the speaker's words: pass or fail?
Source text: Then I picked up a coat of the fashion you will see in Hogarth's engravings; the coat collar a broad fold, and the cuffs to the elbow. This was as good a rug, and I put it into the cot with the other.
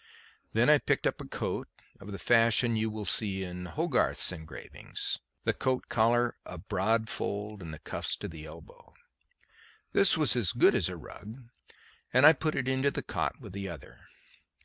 fail